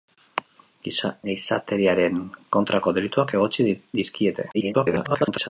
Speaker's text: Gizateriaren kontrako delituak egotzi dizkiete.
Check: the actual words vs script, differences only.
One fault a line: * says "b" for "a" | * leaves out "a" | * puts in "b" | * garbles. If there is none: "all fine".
* garbles